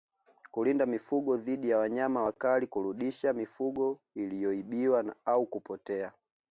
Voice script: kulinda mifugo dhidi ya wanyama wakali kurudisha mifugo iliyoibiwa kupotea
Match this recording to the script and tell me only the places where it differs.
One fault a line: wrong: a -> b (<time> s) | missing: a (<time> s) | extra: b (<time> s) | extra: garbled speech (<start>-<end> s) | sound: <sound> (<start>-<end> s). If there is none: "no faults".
extra: au (5.2 s)